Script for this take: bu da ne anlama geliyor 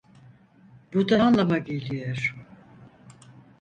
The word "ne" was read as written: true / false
false